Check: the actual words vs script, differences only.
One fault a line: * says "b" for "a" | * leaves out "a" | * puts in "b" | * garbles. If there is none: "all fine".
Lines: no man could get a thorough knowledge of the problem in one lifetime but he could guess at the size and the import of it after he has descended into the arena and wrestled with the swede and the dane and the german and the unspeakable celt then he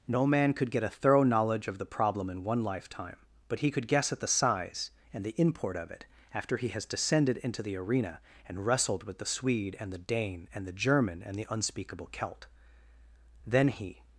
all fine